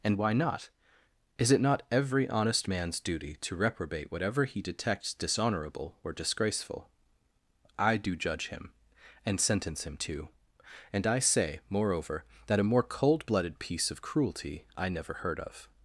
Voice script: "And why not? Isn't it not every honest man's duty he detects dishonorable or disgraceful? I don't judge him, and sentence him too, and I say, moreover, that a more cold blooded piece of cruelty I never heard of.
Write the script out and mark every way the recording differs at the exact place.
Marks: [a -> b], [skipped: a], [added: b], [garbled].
"And why not? [Isn't -> Is] it not every honest man's duty [added: to reprobate whatever] he detects dishonorable or disgraceful? I [don't -> do] judge him, and sentence him too, and I say, moreover, that a more cold blooded piece of cruelty I never heard of.